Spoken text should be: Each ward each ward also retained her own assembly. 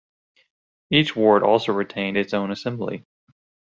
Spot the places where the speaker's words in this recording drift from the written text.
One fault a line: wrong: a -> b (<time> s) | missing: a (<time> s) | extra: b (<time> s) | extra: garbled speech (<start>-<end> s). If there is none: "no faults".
missing: each ward (1.4 s)
wrong: her -> its (2.2 s)